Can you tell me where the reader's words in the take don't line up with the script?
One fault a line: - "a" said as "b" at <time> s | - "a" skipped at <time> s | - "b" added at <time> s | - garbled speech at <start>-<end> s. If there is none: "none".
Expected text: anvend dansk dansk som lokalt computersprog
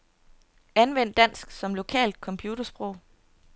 - "dansk" skipped at 1.5 s